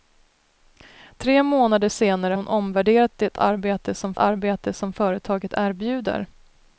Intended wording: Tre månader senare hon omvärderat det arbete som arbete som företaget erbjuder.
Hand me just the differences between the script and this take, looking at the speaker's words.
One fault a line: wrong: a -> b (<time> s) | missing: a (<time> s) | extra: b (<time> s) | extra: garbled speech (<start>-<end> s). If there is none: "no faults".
no faults